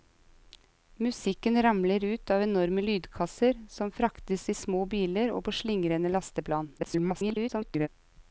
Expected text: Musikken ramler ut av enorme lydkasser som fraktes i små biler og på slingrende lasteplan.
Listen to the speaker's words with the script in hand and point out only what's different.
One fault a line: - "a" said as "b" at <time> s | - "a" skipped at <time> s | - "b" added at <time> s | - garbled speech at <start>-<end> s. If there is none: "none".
- garbled speech at 6.8-7.9 s